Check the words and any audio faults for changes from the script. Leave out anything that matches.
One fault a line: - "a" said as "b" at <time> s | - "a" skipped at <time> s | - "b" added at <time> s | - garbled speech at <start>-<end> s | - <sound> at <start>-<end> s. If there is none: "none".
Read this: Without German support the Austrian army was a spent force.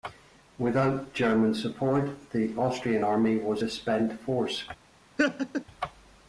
- laugh at 5.2-5.6 s